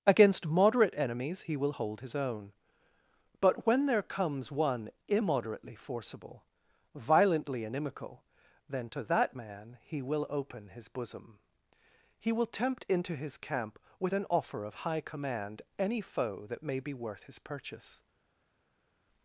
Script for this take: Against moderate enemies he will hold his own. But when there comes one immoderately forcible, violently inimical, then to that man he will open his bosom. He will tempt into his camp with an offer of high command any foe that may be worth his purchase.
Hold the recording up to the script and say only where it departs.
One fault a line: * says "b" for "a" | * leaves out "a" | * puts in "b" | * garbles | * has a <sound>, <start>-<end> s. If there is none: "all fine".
all fine